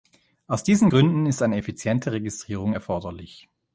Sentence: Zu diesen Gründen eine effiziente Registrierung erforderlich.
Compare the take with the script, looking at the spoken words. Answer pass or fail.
fail